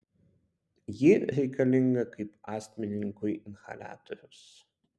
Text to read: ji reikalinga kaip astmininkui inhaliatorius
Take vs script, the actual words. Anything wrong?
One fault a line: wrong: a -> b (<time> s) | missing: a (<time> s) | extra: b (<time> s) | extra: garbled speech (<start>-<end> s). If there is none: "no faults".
no faults